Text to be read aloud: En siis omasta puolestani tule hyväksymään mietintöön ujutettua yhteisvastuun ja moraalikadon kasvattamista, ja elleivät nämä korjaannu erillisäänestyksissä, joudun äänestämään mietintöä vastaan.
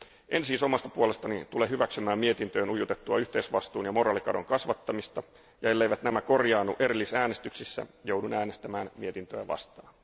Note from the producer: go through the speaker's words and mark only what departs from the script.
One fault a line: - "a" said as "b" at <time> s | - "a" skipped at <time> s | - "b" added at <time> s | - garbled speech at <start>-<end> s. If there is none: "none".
none